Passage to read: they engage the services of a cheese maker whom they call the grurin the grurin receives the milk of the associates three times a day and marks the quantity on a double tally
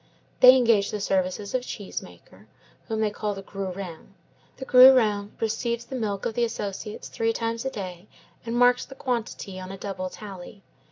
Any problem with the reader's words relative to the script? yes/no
no